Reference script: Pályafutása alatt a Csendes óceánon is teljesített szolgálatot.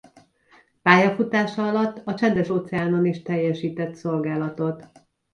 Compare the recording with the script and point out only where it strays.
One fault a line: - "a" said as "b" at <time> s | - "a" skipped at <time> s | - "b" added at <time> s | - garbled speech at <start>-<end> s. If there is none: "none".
none